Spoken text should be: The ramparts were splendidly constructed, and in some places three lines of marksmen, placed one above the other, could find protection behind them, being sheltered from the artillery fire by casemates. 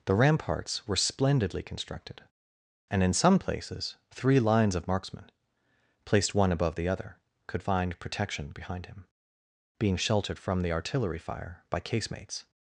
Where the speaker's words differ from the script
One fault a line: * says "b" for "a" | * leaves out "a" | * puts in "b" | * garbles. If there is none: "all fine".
* says "him" for "them"